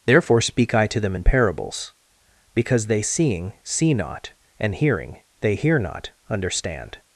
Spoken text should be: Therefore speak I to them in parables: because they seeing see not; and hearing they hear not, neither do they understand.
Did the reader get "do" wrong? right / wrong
wrong